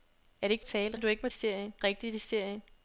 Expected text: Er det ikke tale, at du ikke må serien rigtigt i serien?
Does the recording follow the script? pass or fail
pass